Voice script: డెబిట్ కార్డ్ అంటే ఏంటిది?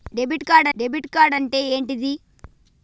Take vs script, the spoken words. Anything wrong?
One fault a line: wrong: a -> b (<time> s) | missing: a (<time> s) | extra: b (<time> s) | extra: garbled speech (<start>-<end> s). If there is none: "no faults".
extra: డెబిట్ కార్డ్ (0.8 s)